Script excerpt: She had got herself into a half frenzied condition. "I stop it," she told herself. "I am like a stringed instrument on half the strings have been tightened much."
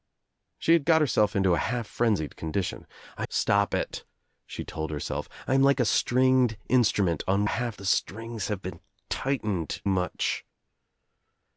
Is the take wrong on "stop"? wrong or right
right